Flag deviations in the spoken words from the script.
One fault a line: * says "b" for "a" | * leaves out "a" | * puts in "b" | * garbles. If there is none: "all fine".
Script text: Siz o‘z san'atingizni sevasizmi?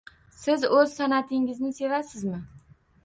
all fine